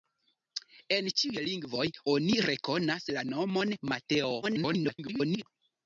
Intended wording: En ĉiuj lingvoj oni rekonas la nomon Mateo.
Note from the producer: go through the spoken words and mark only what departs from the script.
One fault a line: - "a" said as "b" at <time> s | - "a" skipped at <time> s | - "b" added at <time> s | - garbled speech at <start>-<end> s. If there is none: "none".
- garbled speech at 4.4-5.4 s